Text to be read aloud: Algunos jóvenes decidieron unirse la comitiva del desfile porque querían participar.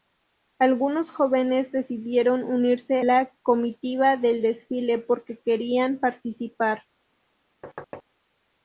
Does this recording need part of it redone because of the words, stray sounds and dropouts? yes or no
yes